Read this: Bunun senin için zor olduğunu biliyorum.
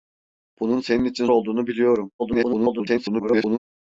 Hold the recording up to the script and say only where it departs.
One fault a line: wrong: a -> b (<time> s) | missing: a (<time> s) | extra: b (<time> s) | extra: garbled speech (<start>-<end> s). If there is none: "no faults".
missing: zor (1.3 s)
extra: garbled speech (2.2-3.6 s)